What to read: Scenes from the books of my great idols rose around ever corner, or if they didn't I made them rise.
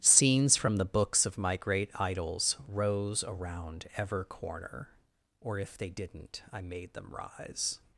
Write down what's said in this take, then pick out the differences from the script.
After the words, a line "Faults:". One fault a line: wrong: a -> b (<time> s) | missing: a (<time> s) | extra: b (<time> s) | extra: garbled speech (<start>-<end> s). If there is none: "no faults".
Scenes from the books of my great idols rose around ever corner, or if they didn't I made them rise.
Faults:
no faults